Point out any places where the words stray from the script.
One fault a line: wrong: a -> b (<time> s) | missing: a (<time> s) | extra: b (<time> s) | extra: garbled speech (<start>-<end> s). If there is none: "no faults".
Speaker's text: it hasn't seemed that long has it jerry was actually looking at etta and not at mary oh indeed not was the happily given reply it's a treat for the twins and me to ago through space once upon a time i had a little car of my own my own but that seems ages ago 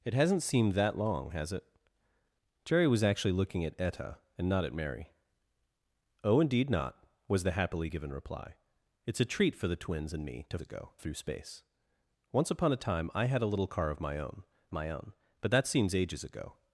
no faults